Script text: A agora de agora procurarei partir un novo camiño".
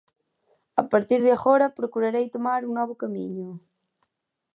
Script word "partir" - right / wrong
wrong